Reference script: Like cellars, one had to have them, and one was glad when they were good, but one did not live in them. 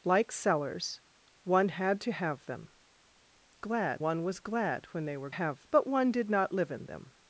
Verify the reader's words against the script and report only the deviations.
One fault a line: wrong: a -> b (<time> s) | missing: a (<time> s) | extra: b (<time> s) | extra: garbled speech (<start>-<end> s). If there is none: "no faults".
wrong: and -> glad (3.6 s)
wrong: good -> have (5.3 s)